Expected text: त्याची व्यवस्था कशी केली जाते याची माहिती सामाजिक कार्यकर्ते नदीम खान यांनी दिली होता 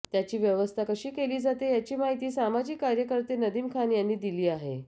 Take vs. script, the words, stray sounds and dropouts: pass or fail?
fail